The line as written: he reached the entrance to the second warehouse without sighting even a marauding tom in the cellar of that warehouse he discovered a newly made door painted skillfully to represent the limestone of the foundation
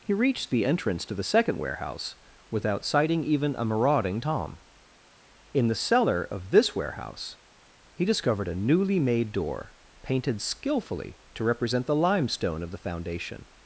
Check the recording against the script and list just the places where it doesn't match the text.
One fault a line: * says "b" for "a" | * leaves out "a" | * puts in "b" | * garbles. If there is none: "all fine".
* says "this" for "that"